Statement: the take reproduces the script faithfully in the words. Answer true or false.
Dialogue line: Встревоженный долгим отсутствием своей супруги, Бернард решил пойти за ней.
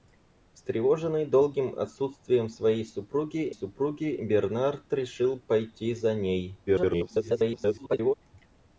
false